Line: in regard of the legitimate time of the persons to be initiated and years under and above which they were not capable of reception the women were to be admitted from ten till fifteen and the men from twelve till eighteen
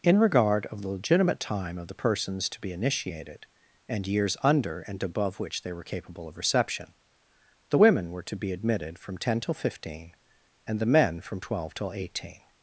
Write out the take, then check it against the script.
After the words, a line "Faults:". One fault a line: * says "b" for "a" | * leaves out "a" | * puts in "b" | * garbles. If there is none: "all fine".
in regard of the legitimate time of the persons to be initiated and years under and above which they were capable of reception the women were to be admitted from ten till fifteen and the men from twelve till eighteen
Faults:
* leaves out "not"